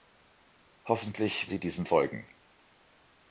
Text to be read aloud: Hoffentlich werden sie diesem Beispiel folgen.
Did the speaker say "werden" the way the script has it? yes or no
no